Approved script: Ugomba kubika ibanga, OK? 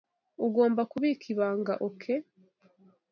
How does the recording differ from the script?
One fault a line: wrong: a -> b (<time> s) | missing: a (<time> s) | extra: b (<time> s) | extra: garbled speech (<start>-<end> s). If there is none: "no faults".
no faults